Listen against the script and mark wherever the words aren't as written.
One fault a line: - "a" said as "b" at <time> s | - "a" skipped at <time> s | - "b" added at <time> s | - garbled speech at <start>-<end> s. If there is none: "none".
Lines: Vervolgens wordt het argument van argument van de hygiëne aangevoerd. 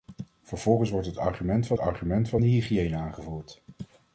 none